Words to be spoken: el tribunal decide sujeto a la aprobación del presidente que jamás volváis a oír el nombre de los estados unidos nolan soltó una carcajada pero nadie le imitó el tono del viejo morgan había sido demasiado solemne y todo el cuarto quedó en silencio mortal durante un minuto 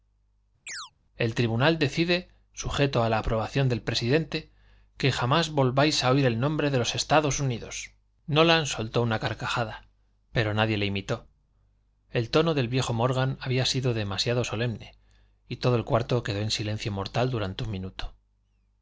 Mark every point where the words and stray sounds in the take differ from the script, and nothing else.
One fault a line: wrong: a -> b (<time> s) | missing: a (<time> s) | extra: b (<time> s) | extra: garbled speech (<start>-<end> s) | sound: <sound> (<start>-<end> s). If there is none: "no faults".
sound: chirp (0.7-0.9 s)